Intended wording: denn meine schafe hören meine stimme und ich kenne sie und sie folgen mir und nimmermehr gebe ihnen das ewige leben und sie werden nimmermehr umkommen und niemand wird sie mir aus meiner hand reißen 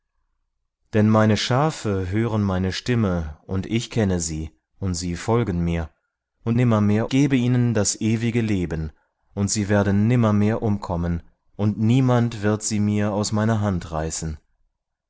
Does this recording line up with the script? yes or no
yes